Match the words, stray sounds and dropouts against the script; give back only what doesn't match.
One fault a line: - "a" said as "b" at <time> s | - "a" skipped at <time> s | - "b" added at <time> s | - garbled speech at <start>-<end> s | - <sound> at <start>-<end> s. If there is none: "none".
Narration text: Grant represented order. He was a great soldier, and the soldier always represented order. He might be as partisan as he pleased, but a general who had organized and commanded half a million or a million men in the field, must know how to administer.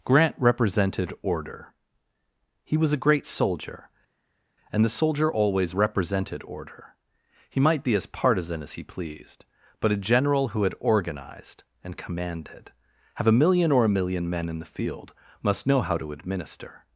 - "half" said as "have" at 13.1 s